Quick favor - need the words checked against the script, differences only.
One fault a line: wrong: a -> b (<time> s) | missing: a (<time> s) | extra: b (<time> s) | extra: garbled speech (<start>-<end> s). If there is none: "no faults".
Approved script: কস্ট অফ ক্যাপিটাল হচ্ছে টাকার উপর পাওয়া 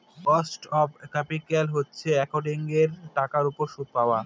extra: একাউন্টিঙের (2.2 s)
extra: সুদ (3.7 s)